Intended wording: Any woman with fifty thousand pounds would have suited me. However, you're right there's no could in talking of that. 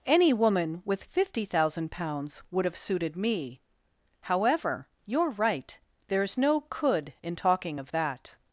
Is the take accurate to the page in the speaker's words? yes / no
yes